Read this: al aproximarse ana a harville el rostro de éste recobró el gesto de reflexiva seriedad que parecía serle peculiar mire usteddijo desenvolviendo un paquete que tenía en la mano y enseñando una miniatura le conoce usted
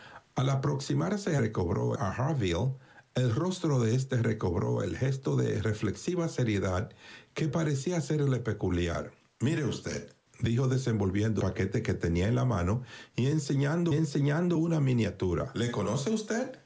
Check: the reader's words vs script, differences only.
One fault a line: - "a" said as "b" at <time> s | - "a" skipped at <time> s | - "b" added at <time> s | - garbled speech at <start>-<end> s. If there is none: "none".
- "ana" said as "recobró" at 1.4 s
- "un" skipped at 11.4 s
- "enseñando" added at 13.9 s